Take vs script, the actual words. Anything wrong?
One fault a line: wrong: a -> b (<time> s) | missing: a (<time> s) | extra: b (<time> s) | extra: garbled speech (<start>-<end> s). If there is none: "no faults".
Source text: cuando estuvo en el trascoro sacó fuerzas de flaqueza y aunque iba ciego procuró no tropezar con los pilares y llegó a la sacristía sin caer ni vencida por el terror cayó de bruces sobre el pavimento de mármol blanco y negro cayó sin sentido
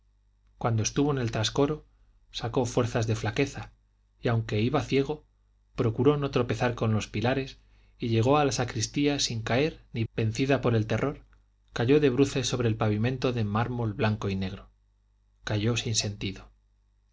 no faults